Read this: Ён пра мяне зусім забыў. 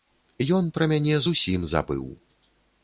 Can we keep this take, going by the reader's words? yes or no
yes